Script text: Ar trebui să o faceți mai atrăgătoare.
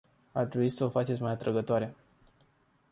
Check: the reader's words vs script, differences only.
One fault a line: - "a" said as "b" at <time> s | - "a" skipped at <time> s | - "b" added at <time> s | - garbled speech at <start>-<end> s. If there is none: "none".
none